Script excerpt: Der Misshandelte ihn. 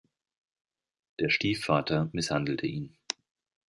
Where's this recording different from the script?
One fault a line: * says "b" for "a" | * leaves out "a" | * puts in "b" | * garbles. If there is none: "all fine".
* puts in "Stiefvater"